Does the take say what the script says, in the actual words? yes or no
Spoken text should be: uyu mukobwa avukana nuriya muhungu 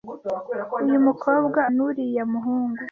no